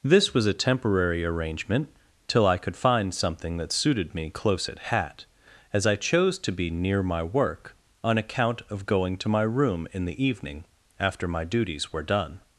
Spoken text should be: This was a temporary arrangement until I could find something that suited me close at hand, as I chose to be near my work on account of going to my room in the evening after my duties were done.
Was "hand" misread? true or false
true